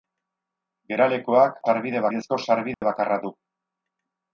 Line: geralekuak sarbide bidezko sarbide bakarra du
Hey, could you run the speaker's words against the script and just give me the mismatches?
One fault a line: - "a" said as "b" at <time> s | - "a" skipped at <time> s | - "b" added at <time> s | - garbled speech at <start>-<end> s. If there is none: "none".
none